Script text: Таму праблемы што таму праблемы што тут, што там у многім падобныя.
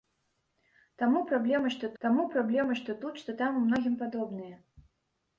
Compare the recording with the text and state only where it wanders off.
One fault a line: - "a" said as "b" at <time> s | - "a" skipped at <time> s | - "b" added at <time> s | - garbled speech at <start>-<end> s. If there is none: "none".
none